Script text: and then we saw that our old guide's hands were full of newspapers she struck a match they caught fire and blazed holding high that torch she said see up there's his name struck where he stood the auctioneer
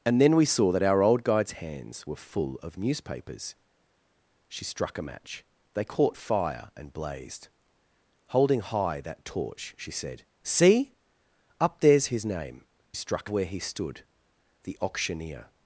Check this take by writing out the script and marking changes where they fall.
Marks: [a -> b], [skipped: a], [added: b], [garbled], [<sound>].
and then we saw that our old guide's hands were full of newspapers she struck a match they caught fire and blazed holding high that torch she said see up there's his name struck where he stood the auctioneer